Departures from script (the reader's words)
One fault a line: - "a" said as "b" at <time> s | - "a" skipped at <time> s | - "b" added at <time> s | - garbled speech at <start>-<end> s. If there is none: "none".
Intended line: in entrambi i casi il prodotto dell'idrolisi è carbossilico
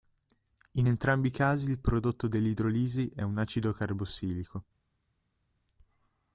- "un acido" added at 3.2 s